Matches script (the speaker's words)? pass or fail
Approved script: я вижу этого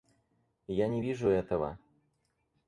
fail